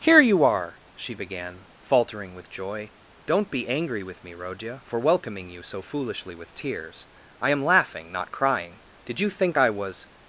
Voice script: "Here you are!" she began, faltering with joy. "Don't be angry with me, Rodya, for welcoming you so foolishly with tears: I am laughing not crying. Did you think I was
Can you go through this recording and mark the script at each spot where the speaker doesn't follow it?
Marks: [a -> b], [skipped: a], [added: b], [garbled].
"Here you are!" she began, faltering with joy. "Don't be angry with me, Rodya, for welcoming you so foolishly with tears: I am laughing not crying. Did you think I was